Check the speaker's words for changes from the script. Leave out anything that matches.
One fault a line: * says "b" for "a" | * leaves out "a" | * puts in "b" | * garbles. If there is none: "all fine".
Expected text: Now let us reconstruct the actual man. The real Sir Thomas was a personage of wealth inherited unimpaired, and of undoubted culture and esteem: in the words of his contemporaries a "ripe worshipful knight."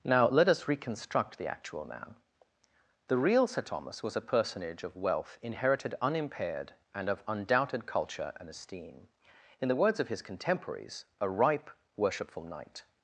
all fine